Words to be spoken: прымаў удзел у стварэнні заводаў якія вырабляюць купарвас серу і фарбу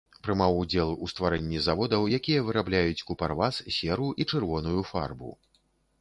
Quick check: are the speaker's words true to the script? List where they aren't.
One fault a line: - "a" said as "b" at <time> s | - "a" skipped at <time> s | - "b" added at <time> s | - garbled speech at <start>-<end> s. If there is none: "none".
- "чырвоную" added at 4.3 s